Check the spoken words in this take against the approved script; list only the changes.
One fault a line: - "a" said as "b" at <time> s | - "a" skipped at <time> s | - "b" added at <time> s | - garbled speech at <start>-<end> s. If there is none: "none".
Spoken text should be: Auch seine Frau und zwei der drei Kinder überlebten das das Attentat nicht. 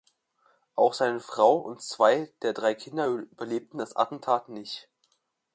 - "das" skipped at 3.9 s